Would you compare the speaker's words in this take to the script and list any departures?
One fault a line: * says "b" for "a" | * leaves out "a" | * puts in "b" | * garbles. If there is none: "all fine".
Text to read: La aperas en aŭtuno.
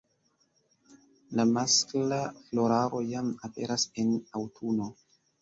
* puts in "maskla floraro jam"